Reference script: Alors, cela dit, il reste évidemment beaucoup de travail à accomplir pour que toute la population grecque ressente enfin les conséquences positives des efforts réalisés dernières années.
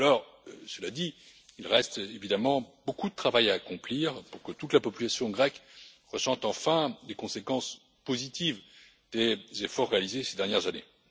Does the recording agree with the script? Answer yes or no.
no